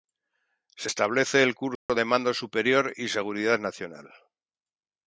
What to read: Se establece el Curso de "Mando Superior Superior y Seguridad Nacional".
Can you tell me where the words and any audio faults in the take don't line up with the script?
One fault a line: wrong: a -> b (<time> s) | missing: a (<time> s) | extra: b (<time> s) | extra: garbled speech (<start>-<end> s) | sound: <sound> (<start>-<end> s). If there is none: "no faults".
sound: dropout (1.8-1.9 s)
missing: Superior (2.9 s)